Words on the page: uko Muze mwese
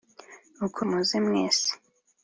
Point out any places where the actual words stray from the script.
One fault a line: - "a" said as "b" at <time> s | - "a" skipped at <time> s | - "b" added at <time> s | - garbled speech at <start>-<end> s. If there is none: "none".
none